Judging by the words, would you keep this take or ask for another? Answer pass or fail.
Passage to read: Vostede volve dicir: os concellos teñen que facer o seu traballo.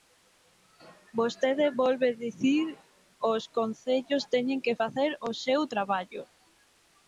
pass